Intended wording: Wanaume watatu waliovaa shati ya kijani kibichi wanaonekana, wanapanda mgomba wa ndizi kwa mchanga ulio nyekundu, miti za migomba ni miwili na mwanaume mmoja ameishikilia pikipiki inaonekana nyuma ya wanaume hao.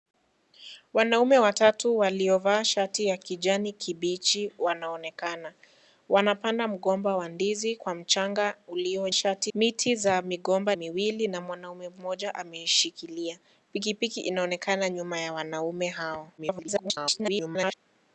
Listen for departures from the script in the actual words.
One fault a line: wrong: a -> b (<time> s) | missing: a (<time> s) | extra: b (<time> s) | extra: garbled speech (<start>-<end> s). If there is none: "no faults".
wrong: nyekundu -> shati (9.1 s)
missing: ni (10.8 s)
extra: garbled speech (16.4-17.7 s)